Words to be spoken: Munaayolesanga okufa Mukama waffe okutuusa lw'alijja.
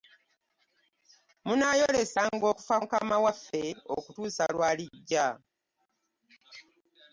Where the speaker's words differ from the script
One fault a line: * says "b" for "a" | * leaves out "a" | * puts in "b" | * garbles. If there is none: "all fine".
all fine